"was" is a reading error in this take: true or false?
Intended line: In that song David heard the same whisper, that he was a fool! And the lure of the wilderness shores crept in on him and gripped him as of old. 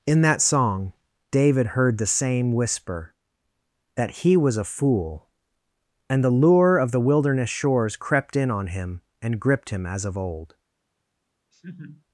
false